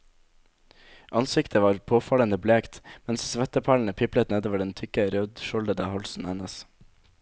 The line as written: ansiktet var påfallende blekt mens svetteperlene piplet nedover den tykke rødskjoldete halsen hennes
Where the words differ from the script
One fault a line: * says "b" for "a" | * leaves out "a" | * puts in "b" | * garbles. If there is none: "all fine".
all fine